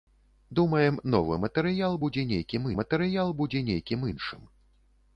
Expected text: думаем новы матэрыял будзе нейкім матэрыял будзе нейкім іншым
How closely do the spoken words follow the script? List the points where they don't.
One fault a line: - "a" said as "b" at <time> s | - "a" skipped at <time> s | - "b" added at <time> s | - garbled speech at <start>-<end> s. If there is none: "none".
none